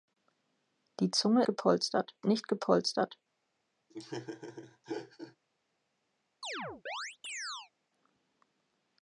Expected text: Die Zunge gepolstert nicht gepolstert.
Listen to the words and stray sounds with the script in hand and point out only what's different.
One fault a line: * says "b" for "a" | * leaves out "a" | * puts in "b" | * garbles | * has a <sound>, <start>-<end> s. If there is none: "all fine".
* has a laugh, 3.9-5.4 s
* has a chirp, 6.4-7.7 s